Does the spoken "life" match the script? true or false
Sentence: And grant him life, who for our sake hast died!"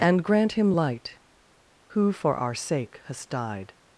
false